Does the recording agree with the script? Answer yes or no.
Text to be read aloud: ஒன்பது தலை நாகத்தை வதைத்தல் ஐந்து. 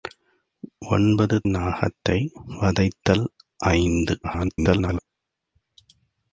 no